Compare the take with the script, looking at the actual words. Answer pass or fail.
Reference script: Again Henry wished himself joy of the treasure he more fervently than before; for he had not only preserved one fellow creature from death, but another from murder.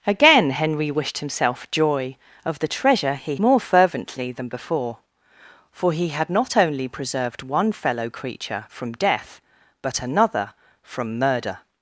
pass